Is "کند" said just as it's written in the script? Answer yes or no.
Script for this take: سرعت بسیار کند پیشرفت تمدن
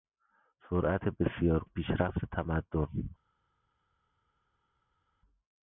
no